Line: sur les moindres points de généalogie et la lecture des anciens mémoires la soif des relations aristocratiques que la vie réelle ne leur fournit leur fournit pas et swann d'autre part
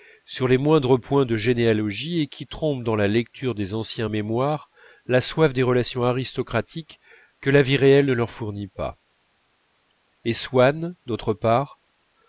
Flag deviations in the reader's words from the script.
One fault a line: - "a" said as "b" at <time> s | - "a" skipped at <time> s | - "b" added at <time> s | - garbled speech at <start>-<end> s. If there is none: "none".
- "qui trompent dans" added at 2.3 s
- "leur fournit" skipped at 8.7 s